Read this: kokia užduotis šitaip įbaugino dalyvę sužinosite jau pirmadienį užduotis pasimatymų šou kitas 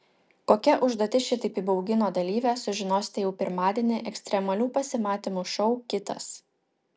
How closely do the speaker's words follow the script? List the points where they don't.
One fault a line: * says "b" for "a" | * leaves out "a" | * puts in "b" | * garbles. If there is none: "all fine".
* says "ekstremalių" for "užduotis"